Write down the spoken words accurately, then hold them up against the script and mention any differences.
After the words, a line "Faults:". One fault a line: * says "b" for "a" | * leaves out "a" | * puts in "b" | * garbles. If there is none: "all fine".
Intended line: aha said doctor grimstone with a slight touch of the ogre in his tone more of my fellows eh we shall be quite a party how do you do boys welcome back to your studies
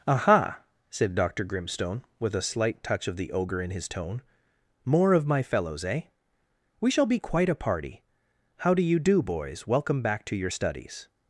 aha said doctor grimstone with a slight touch of the ogre in his tone more of my fellows eh we shall be quite a party how do you do boys welcome back to your studies
Faults:
all fine